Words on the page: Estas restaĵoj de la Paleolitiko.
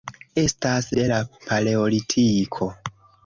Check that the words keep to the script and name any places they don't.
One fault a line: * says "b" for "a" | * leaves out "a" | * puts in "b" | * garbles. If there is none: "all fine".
* leaves out "restaĵoj"